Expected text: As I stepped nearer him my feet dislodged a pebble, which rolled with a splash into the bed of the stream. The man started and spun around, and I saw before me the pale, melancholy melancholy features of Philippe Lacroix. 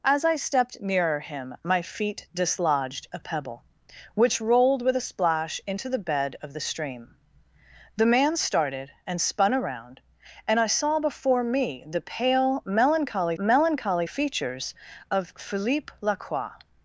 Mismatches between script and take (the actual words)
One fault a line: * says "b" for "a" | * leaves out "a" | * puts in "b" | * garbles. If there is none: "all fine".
all fine